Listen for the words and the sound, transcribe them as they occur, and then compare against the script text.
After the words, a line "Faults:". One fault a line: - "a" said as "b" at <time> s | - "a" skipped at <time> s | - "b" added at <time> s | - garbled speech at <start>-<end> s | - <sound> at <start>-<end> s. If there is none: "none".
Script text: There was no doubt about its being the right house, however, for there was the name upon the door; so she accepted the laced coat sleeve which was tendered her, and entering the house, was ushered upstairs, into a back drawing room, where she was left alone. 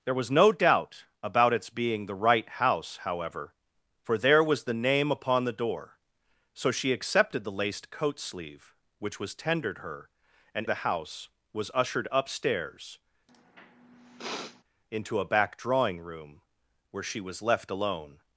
There was no doubt about its being the right house, however, for there was the name upon the door; so she accepted the laced coat sleeve which was tendered her, and the house, was ushered upstairs, into a back drawing room, where she was left alone.
Faults:
- "entering" skipped at 10.7 s
- sniff at 13.3-14.6 s